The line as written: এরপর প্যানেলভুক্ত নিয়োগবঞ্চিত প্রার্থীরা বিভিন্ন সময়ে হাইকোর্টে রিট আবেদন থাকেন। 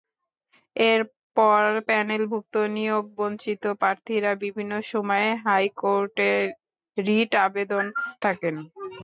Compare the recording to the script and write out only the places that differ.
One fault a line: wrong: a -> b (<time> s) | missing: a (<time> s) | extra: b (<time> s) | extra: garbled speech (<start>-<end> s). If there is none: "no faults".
no faults